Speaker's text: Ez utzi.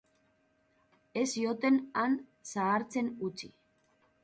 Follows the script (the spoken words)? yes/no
no